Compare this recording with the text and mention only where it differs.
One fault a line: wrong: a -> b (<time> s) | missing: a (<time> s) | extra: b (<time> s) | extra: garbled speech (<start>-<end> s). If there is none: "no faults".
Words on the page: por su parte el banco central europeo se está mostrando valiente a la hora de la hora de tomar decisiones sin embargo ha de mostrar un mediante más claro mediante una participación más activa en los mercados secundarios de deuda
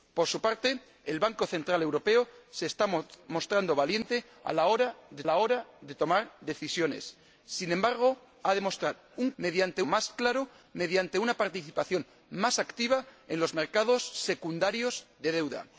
no faults